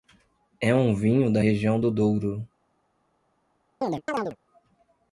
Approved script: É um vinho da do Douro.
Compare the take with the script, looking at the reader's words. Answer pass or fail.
fail